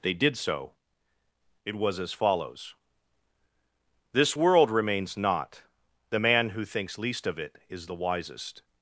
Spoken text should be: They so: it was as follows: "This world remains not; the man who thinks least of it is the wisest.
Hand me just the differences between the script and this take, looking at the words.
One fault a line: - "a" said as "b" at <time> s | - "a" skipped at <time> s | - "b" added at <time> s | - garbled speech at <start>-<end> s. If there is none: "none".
- "did" added at 0.1 s